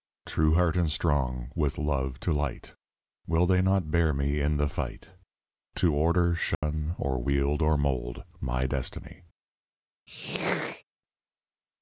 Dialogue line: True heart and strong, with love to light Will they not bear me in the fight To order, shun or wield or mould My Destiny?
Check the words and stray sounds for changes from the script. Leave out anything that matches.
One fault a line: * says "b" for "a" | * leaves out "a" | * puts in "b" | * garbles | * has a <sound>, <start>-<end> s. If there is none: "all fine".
* has a dropout, 6.5-6.6 s
* has a throat clearing, 10.1-10.8 s